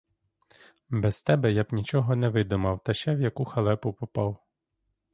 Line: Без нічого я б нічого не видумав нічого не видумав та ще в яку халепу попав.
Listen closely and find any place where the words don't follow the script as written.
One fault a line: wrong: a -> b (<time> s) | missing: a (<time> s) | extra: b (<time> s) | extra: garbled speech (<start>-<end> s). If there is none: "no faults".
wrong: нічого -> тебе (1.2 s)
missing: нічого не видумав (2.8 s)